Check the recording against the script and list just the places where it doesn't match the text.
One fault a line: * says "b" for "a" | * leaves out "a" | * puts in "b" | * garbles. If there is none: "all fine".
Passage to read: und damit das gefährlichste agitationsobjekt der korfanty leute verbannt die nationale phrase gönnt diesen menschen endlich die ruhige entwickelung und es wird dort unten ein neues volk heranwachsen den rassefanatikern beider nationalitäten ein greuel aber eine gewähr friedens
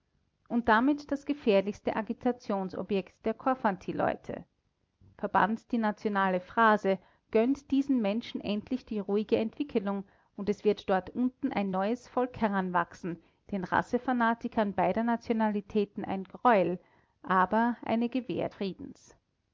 all fine